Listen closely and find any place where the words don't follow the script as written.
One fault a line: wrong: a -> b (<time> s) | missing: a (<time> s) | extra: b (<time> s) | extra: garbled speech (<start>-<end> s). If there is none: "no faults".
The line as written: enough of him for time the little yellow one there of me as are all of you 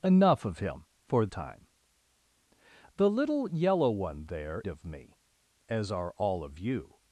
no faults